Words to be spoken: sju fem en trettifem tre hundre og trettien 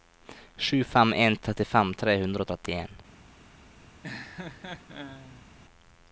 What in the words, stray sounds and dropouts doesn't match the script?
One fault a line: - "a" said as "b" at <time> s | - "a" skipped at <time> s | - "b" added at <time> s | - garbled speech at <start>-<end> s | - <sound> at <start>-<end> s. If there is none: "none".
- laugh at 4.0-5.5 s